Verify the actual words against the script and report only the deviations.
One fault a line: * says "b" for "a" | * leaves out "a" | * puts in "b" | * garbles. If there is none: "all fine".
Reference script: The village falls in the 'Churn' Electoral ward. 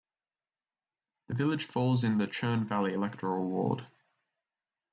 * puts in "Valley"